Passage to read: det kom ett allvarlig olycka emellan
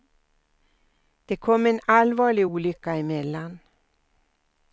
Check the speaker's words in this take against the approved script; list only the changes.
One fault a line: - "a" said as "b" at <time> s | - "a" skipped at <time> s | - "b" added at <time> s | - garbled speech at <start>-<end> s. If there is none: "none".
- "ett" said as "en" at 1.6 s